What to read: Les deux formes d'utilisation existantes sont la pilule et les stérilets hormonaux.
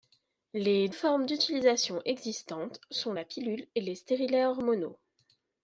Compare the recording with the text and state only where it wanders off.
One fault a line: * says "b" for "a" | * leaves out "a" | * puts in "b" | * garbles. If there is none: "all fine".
* leaves out "deux"